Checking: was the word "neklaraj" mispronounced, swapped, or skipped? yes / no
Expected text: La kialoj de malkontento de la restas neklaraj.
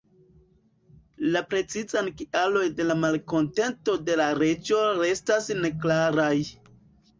no